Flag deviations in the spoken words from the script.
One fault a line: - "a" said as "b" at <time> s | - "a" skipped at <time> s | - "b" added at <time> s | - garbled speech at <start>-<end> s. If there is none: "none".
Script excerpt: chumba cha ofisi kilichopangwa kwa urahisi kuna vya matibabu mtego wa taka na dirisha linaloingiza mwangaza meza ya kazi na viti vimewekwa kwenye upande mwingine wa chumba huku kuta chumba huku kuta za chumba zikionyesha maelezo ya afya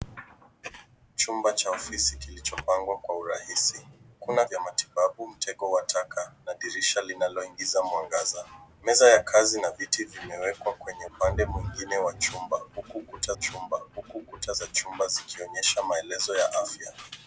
none